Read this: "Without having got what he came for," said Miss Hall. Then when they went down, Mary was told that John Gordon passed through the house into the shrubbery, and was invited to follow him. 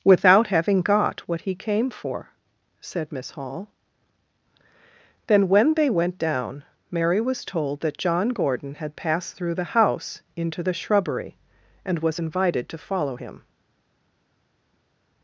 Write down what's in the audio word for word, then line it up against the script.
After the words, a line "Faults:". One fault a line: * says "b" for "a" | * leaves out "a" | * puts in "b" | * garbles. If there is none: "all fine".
"Without having got what he came for," said Miss Hall. Then when they went down, Mary was told that John Gordon had passed through the house into the shrubbery, and was invited to follow him.
Faults:
* puts in "had"